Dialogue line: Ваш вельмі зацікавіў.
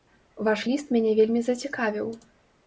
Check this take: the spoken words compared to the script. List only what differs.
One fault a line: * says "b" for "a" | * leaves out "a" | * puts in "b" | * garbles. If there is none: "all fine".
* puts in "ліст мяне"